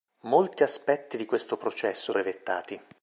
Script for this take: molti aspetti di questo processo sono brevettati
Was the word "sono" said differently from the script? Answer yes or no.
yes